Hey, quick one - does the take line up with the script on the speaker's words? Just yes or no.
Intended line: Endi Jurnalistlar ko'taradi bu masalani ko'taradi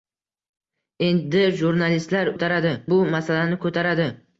yes